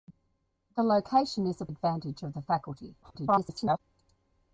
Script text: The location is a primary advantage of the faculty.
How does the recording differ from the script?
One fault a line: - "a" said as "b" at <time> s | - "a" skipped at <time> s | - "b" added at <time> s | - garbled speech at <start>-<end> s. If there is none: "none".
- "primary" skipped at 1.6 s
- garbled speech at 3.0-3.8 s